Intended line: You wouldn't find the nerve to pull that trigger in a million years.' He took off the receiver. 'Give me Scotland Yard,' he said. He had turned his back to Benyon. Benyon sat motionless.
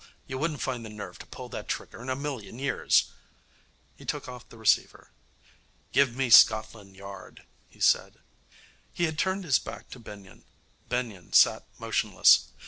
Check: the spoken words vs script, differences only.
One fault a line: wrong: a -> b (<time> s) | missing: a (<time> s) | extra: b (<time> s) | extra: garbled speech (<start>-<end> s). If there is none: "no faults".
no faults